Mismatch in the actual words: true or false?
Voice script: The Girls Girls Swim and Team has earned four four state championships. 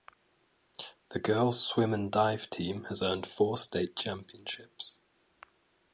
true